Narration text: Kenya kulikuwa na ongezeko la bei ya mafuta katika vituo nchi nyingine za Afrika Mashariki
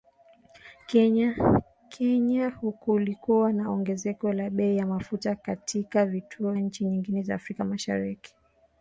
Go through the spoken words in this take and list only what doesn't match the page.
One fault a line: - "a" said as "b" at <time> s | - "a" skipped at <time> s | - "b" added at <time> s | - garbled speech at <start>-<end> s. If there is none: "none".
none